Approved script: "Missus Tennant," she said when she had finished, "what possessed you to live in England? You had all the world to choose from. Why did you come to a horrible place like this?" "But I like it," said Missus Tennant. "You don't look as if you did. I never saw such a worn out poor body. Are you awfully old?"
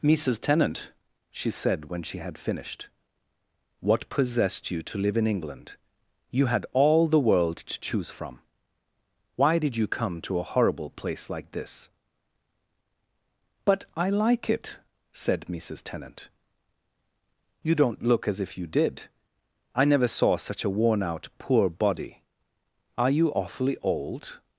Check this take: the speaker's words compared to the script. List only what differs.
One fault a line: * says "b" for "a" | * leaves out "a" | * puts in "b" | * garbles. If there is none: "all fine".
all fine